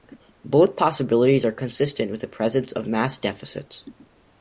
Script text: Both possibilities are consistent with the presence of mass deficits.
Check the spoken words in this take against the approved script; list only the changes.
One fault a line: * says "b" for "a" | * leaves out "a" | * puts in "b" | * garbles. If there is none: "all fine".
all fine